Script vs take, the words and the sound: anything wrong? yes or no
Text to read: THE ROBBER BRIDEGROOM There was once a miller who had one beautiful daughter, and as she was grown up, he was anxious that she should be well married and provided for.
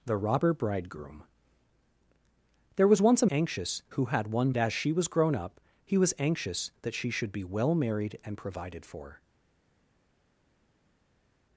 yes